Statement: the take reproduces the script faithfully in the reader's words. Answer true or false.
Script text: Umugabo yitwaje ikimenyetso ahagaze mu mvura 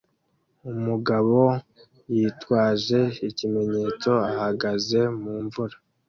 true